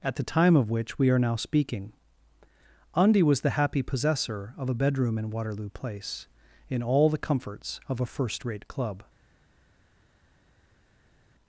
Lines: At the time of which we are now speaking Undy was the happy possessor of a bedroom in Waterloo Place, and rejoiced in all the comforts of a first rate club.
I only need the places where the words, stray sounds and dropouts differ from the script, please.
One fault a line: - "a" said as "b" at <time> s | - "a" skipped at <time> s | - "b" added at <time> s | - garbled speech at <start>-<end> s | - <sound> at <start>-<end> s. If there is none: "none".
- "and rejoiced" skipped at 6.3 s